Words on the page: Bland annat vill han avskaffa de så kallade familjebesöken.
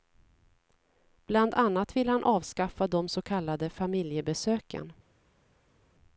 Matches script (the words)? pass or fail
pass